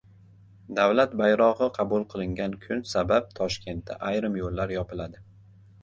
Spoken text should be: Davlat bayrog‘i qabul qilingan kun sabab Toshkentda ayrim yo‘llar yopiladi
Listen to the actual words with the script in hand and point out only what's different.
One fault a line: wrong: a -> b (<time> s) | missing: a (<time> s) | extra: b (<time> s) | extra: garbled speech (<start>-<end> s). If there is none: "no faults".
no faults